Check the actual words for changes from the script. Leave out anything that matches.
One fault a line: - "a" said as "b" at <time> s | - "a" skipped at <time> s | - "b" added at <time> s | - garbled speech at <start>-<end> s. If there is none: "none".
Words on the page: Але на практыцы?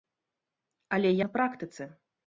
none